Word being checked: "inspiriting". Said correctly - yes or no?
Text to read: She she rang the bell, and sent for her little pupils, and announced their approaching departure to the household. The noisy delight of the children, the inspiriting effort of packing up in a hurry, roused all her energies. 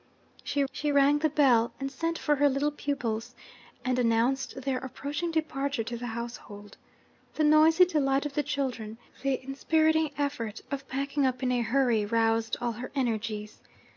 yes